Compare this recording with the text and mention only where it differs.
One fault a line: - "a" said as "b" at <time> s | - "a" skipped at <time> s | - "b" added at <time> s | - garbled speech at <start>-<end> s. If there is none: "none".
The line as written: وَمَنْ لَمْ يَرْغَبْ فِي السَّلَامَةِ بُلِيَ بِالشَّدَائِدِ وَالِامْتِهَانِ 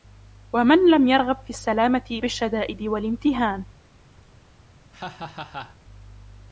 - "بُلِيَ" skipped at 2.2 s